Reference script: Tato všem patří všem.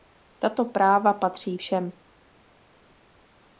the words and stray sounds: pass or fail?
fail